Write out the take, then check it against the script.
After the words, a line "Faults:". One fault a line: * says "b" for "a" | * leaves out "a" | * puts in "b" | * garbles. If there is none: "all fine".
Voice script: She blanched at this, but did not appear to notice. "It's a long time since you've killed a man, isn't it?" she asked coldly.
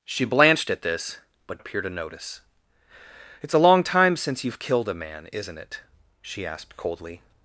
She blanched at this, but appear to notice. "It's a long time since you've killed a man, isn't it?" she asked coldly.
Faults:
* leaves out "did not"